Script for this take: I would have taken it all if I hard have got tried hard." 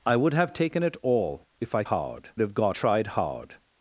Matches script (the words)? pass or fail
pass